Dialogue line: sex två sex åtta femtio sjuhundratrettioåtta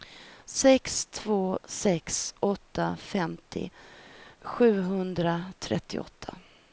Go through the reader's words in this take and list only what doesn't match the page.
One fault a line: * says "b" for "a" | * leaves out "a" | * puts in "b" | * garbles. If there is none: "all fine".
all fine